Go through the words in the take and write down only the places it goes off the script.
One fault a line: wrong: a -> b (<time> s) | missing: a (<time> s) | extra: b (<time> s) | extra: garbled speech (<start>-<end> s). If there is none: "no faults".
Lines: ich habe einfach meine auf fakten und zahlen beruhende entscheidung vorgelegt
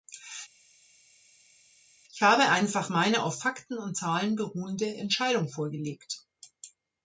no faults